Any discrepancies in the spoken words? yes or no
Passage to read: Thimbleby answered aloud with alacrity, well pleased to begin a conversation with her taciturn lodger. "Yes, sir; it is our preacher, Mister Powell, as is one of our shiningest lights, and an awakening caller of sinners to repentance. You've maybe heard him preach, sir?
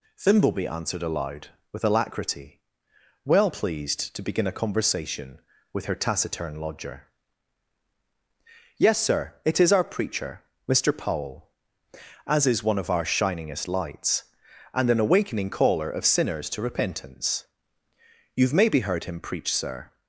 no